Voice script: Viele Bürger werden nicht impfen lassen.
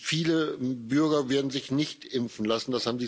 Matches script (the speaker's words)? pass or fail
fail